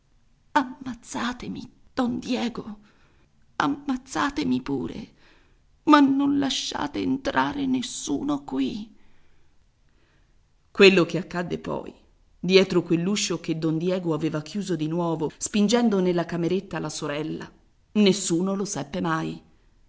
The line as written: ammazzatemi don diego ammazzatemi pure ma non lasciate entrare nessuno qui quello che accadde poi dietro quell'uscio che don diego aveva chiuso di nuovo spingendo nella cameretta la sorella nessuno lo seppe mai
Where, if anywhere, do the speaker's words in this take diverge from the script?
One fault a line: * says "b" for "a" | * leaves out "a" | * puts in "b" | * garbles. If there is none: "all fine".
all fine